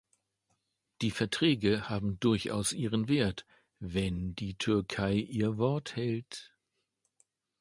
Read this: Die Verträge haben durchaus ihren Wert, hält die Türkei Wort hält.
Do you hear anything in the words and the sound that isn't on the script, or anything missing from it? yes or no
yes